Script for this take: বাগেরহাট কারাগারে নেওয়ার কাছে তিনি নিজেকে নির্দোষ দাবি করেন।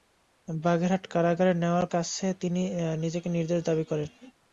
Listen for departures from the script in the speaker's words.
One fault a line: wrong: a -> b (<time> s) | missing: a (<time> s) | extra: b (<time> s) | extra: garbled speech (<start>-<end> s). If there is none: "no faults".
no faults